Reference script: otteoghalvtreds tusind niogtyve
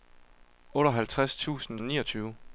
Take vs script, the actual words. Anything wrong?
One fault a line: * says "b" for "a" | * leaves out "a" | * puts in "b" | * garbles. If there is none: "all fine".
all fine